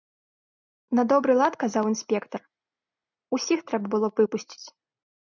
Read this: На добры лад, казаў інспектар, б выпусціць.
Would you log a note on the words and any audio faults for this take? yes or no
yes